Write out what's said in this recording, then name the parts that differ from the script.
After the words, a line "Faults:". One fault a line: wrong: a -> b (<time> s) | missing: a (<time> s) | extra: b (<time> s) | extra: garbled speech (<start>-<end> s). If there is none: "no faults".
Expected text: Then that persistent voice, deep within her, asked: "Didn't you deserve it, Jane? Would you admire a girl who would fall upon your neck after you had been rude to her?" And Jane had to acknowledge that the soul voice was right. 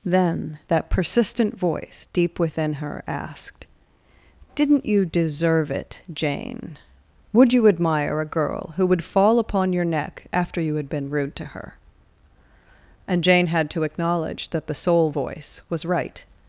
Then that persistent voice, deep within her, asked: "Didn't you deserve it, Jane? Would you admire a girl who would fall upon your neck after you had been rude to her?" And Jane had to acknowledge that the soul voice was right.
Faults:
no faults